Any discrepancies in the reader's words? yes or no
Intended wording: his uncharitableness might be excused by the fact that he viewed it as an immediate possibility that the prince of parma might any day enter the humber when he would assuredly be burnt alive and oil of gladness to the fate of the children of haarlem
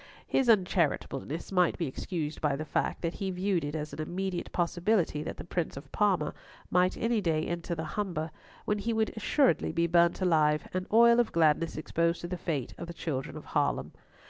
yes